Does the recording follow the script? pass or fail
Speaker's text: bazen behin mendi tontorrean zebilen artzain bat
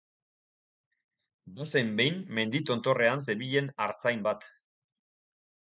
pass